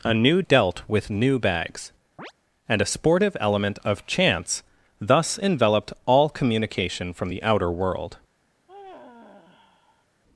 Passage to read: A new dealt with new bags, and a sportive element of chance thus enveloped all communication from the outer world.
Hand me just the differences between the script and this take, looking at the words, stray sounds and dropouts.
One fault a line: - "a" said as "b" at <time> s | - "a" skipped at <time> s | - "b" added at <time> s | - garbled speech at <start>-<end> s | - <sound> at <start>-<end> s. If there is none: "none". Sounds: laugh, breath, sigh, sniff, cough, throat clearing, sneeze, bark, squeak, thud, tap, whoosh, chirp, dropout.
- chirp at 2.2-2.3 s
- sigh at 8.7-10.1 s